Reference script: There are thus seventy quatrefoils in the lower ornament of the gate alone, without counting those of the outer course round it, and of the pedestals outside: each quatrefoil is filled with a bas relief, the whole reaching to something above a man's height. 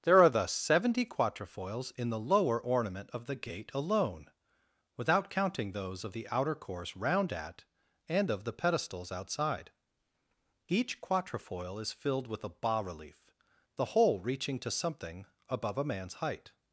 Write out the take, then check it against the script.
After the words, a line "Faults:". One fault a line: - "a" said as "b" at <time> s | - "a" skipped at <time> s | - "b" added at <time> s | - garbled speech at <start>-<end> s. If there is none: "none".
There are thus seventy quatrefoils in the lower ornament of the gate alone, without counting those of the outer course round at, and of the pedestals outside: each quatrefoil is filled with a bas relief, the whole reaching to something above a man's height.
Faults:
- "it" said as "at" at 7.3 s